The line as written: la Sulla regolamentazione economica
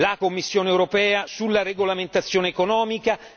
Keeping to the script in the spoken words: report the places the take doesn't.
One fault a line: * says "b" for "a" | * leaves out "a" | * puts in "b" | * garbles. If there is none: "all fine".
* puts in "Commissione europea"